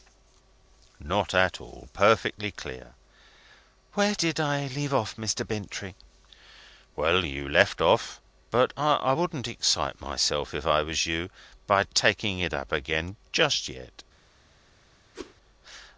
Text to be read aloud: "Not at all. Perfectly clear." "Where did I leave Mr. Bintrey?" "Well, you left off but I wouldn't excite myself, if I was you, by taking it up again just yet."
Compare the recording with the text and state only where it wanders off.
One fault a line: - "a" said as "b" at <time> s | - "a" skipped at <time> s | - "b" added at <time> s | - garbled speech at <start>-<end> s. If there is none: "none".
- "off" added at 4.9 s